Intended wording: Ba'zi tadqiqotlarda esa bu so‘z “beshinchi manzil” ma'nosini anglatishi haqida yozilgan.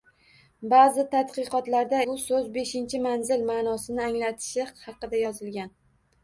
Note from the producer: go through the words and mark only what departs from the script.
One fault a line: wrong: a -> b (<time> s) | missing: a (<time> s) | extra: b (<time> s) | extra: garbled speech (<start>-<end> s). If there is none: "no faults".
missing: esa (2.0 s)